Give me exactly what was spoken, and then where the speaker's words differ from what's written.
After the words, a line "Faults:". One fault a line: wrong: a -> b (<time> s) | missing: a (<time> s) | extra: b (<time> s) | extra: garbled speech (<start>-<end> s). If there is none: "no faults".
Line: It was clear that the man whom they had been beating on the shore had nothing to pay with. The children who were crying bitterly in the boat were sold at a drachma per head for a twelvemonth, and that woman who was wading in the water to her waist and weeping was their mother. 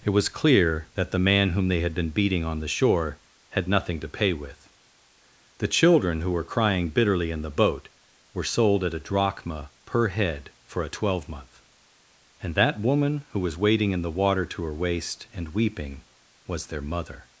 It was clear that the man whom they had been beating on the shore had nothing to pay with. The children who were crying bitterly in the boat were sold at a drachma per head for a twelvemonth, and that woman who was wading in the water to her waist and weeping was their mother.
Faults:
no faults